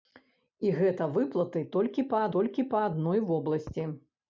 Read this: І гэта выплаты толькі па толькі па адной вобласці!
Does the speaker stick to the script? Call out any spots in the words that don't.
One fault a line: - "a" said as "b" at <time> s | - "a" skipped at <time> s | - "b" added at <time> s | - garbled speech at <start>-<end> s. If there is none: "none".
none